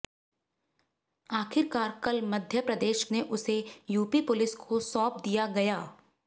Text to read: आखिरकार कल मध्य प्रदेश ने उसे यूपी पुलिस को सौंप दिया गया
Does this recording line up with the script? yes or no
yes